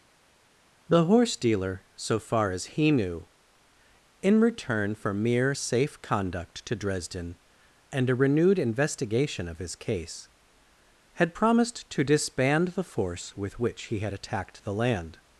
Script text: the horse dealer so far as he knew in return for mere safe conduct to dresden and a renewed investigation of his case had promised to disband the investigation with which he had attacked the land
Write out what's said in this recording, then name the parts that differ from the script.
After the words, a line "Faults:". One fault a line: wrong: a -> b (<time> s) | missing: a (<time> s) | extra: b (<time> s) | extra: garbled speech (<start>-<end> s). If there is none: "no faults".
the horse dealer so far as he knew in return for mere safe conduct to dresden and a renewed investigation of his case had promised to disband the force with which he had attacked the land
Faults:
wrong: investigation -> force (12.8 s)